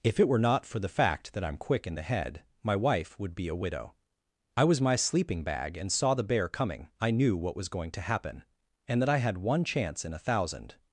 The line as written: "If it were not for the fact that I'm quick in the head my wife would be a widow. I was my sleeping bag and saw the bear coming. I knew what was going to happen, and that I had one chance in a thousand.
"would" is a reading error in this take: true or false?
false